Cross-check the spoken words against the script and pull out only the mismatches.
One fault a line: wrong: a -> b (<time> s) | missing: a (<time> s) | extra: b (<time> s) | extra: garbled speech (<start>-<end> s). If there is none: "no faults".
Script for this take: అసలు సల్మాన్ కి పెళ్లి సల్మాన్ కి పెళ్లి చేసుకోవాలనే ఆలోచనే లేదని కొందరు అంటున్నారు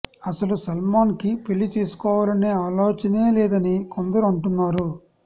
missing: సల్మాన్ కి పెళ్లి (1.7 s)